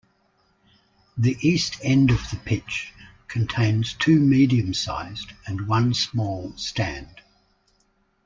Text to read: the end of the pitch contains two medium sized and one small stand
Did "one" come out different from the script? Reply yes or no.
no